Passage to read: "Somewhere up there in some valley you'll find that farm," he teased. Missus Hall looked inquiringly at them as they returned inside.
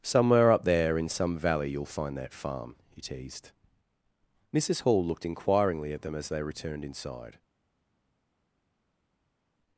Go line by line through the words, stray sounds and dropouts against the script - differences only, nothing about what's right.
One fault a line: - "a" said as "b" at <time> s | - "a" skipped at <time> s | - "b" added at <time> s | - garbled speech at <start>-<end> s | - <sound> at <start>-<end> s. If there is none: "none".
none